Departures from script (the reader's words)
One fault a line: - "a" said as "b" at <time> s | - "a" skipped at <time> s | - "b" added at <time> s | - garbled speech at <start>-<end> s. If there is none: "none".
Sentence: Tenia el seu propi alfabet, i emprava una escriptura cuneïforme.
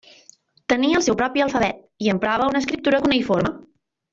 none